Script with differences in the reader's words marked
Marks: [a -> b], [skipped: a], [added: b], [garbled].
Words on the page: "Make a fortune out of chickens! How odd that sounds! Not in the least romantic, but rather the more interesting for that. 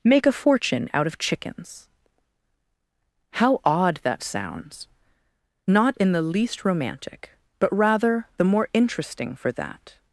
"Make a fortune out of chickens! How odd that sounds! Not in the least romantic, but rather the more interesting for that.